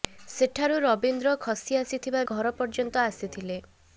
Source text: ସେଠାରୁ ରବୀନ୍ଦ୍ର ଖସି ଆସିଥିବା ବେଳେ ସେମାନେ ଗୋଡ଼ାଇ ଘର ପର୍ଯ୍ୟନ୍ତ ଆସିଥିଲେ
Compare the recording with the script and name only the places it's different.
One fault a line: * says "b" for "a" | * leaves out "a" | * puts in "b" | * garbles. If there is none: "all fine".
* leaves out "ବେଳେ ସେମାନେ ଗୋଡ଼ାଇ"